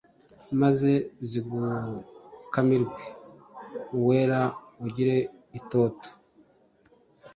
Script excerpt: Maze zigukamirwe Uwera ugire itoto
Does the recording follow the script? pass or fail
pass